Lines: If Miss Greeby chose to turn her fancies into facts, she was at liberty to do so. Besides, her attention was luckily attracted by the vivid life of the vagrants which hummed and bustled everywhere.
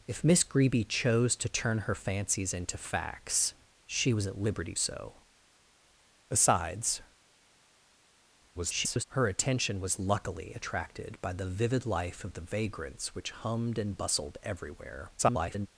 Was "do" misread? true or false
true